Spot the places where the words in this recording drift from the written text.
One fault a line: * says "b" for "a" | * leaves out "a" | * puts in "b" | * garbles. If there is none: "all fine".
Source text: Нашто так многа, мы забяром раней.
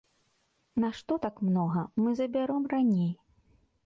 all fine